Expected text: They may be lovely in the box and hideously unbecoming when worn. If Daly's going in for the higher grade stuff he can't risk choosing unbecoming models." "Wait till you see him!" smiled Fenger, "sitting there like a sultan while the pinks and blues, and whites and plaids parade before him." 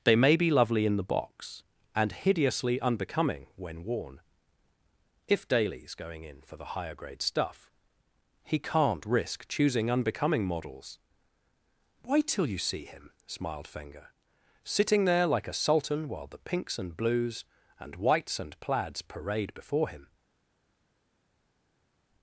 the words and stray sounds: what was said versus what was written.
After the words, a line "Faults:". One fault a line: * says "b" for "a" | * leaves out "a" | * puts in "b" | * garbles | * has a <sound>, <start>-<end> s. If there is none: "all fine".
They may be lovely in the box and hideously unbecoming when worn. If Daly's going in for the higher grade stuff he can't risk choosing unbecoming models." "Wait till you see him!" smiled Fenger, "sitting there like a sultan while the pinks and blues, and whites and plaids parade before him."
Faults:
all fine